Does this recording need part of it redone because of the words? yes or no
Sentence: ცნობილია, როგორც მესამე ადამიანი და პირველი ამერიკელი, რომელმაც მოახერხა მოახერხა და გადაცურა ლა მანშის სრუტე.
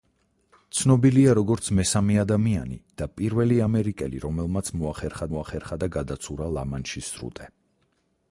no